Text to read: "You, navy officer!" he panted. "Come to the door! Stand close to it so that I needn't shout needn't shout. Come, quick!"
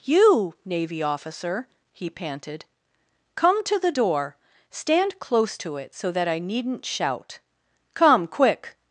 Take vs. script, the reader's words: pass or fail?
fail